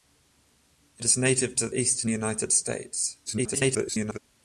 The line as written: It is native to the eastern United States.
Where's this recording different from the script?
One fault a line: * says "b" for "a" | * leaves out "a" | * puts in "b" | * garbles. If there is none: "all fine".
* leaves out "the"
* garbles